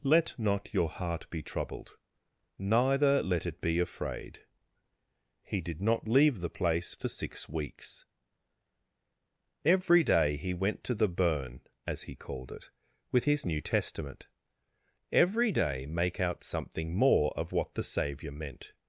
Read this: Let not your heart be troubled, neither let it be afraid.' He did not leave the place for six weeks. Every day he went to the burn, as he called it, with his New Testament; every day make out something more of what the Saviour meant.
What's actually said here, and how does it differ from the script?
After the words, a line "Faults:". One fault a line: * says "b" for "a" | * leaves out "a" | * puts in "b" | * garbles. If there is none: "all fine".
Let not your heart be troubled, neither let it be afraid.' He did not leave the place for six weeks. Every day he went to the burn, as he called it, with his New Testament; every day make out something more of what the Saviour meant.
Faults:
all fine